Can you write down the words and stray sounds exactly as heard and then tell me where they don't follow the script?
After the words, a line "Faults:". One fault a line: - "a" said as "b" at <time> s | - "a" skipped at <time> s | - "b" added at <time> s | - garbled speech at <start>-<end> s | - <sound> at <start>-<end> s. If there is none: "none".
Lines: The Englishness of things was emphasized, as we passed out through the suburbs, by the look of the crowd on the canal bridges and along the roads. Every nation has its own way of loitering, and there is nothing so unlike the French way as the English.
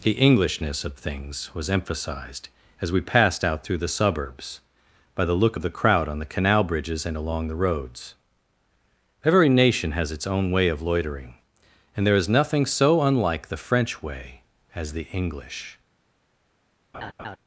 The Englishness of things was emphasized, as we passed out through the suburbs, by the look of the crowd on the canal bridges and along the roads. Every nation has its own way of loitering, and there is nothing so unlike the French way as the English.
Faults:
- laugh at 16.9-17.4 s